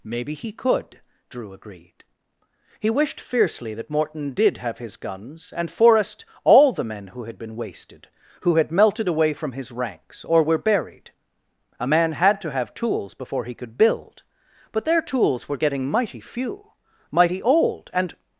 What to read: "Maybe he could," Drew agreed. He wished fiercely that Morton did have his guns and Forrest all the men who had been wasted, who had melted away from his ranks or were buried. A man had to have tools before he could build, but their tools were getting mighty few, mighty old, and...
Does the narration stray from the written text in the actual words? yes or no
no